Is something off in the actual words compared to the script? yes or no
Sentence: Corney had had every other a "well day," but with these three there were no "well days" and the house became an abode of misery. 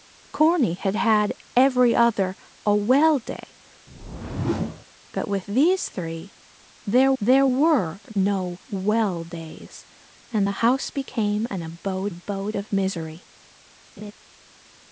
yes